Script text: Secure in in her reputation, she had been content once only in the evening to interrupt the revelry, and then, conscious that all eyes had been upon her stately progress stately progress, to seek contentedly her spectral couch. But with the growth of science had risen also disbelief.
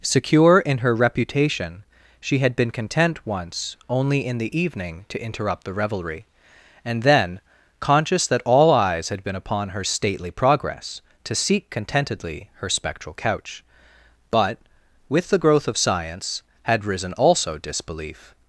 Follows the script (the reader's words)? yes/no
no